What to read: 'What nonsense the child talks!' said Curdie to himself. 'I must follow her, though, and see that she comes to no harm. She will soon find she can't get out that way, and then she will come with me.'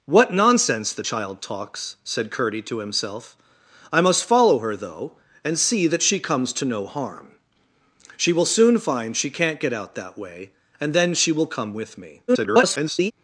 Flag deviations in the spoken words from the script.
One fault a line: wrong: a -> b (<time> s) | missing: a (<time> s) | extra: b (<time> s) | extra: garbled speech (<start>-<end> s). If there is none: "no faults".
extra: garbled speech (12.3-13.1 s)